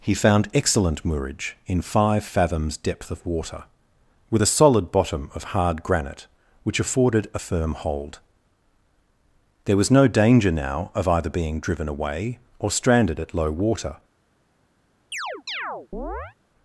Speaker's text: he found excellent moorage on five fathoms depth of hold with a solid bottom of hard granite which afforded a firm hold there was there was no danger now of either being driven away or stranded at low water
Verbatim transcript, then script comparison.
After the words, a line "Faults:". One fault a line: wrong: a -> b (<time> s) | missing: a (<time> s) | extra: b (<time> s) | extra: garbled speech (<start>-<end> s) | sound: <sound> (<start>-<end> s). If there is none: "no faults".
he found excellent moorage in five fathoms depth of water with a solid bottom of hard granite which afforded a firm hold there was no danger now of either being driven away or stranded at low water
Faults:
wrong: on -> in (1.7 s)
wrong: hold -> water (3.2 s)
missing: there was (9.9 s)
sound: chirp (15.1-16.4 s)